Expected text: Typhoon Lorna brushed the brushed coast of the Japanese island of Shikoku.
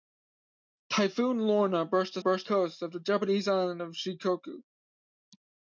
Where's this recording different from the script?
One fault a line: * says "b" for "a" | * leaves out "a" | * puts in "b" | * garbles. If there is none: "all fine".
all fine